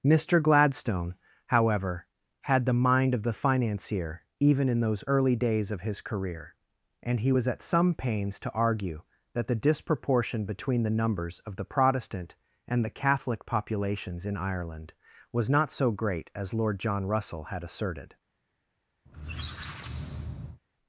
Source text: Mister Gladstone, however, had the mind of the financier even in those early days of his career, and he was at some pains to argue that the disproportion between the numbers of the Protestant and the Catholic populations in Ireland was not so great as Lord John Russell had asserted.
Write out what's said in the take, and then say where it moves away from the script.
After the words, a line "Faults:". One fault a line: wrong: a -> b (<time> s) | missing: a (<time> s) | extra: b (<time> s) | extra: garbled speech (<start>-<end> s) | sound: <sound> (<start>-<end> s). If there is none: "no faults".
Mister Gladstone, however, had the mind of the financier even in those early days of his career, and he was at some pains to argue that the disproportion between the numbers of the Protestant and the Catholic populations in Ireland was not so great as Lord John Russell had asserted.
Faults:
sound: squeak (19.1-20.6 s)